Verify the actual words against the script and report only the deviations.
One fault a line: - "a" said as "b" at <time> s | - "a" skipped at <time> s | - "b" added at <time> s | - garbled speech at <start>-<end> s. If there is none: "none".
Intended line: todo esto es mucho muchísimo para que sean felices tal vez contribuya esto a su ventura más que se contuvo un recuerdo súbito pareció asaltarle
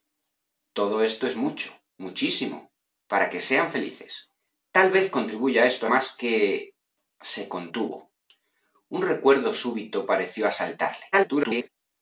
- "su ventura" skipped at 5.9 s
- garbled speech at 11.1-11.7 s